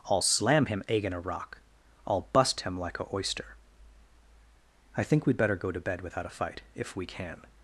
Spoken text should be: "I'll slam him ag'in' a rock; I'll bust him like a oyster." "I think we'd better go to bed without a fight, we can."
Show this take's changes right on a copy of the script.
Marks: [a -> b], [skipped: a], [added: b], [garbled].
"I'll slam him ag'in' a rock; I'll bust him like a oyster." "I think we'd better go to bed without a fight, [added: if] we can."